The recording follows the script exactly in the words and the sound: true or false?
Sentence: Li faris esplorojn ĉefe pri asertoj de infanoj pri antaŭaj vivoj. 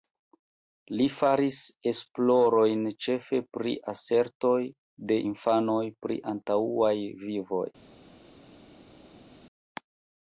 true